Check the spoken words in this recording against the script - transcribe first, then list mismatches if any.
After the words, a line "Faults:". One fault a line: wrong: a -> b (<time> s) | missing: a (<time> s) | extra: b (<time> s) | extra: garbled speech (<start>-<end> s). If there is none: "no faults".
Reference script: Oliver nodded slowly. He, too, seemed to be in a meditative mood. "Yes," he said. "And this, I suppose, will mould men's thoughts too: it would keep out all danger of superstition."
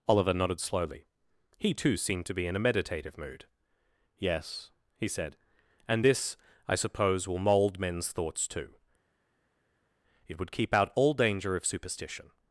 Oliver nodded slowly. He, too, seemed to be in a meditative mood. "Yes," he said. "And this, I suppose, will mould men's thoughts too: it would keep out all danger of superstition."
Faults:
no faults